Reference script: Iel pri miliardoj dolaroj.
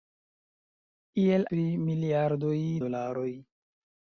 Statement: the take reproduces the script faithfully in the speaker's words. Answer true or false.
true